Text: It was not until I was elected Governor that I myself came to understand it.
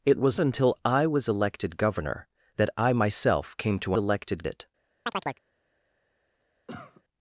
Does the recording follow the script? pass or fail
fail